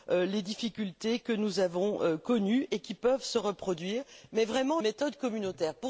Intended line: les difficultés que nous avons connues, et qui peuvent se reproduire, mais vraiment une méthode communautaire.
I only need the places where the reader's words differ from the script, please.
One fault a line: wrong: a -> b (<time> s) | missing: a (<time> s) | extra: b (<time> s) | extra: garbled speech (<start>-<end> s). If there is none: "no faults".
missing: une (4.8 s)